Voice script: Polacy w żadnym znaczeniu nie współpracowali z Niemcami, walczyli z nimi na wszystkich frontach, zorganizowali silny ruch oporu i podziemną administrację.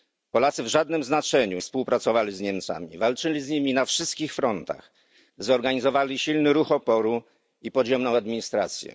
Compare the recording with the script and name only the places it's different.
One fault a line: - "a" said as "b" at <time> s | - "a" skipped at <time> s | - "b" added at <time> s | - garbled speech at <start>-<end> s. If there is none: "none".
- "nie" skipped at 1.6 s